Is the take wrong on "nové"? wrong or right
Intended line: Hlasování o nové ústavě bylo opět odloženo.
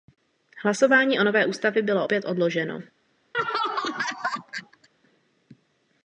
right